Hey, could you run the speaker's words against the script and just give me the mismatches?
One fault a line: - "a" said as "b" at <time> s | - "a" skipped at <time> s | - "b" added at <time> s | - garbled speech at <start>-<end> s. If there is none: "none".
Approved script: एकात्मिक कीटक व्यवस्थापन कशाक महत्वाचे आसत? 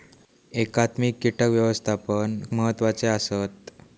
- "कशाक" skipped at 2.4 s